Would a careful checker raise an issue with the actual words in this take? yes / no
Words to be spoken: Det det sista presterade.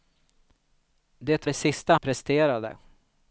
no